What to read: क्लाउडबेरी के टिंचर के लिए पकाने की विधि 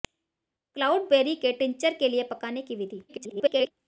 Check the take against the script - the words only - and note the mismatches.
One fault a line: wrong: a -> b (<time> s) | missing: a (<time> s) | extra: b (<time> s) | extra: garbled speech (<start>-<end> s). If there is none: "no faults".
extra: garbled speech (3.1-3.7 s)